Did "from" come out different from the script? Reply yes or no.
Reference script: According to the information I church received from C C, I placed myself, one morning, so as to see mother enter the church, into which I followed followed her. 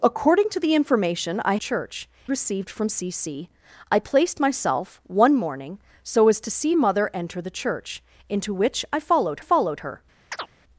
no